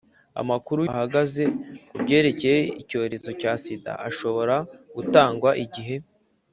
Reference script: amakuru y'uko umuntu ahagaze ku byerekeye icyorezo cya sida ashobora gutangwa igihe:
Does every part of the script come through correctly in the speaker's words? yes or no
no